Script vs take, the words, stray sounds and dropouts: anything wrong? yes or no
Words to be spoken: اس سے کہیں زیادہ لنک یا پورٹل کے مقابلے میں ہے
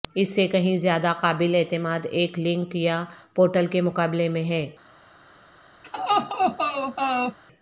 yes